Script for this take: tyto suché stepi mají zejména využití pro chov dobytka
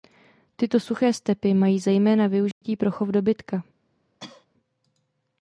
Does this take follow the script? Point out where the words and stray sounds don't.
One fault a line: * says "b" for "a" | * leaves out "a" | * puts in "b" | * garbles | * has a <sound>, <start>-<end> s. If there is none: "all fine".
* has a dropout, 2.5-2.6 s
* has a cough, 4.2-4.5 s